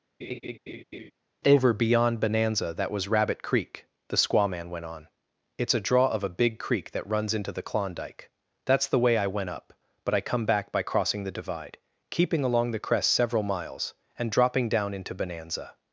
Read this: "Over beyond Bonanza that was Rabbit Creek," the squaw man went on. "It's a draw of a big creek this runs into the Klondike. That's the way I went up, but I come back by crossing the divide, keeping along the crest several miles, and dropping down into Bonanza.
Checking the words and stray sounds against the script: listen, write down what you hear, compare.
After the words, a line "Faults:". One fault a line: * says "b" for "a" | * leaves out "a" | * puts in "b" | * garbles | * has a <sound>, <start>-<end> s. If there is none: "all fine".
"Over beyond Bonanza that was Rabbit Creek," the squaw man went on. "It's a draw of a big creek that runs into the Klondike. That's the way I went up, but I come back by crossing the divide, keeping along the crest several miles, and dropping down into Bonanza.
Faults:
* has a laugh, 0.2-1.1 s
* says "that" for "this"